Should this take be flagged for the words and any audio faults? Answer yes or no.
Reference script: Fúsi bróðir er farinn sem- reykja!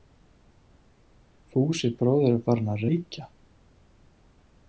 yes